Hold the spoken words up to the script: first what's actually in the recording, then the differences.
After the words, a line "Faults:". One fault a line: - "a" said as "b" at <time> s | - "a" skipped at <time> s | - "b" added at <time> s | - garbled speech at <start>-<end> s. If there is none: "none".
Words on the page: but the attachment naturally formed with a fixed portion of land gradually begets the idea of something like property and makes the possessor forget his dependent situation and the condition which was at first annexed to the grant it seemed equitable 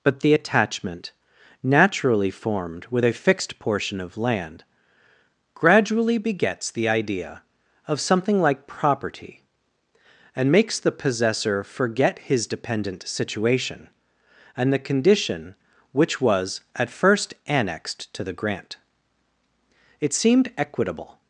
but the attachment naturally formed with a fixed portion of land gradually begets the idea of something like property and makes the possessor forget his dependent situation and the condition which was at first annexed to the grant it seemed equitable
Faults:
none